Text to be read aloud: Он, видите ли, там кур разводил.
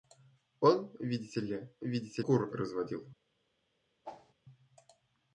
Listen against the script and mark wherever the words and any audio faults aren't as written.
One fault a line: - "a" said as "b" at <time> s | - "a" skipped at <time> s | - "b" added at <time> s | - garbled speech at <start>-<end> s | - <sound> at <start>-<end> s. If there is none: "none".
- "там" said as "видите" at 1.8 s
- whoosh at 4.0-4.3 s